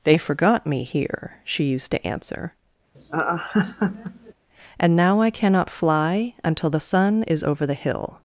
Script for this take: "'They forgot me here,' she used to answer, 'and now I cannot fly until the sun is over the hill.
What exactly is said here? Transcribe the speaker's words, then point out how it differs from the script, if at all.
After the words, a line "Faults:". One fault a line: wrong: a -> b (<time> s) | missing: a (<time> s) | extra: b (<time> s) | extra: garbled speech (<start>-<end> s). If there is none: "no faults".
"'They forgot me here,' she used to answer, 'and now I cannot fly until the sun is over the hill.
Faults:
no faults